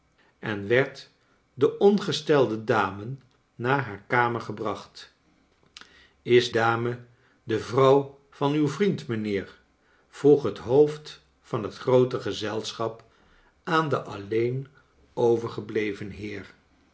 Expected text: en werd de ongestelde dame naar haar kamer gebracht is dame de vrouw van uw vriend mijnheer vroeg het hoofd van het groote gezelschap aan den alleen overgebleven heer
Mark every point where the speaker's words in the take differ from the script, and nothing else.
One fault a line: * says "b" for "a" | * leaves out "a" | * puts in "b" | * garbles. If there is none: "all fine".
all fine